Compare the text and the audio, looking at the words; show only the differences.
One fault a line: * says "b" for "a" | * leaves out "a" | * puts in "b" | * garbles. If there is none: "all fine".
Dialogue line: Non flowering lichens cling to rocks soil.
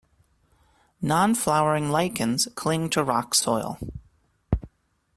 all fine